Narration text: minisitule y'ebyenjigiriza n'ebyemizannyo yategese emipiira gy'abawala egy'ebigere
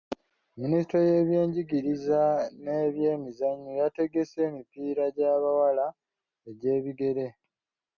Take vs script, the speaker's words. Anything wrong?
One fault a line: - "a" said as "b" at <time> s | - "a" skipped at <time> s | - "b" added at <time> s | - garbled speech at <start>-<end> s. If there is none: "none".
none